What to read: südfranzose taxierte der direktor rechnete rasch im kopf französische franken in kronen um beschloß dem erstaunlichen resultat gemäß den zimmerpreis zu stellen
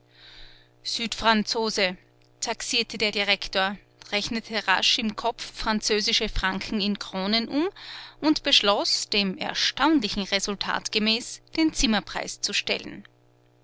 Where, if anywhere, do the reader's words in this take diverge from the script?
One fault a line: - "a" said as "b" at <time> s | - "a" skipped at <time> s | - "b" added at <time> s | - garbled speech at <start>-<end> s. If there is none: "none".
- "und" added at 8.2 s